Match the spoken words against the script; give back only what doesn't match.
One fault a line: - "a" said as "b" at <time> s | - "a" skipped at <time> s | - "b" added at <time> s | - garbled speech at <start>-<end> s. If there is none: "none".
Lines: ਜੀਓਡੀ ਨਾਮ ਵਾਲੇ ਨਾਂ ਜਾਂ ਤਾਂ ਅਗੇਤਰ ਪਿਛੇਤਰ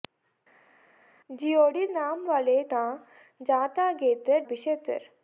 none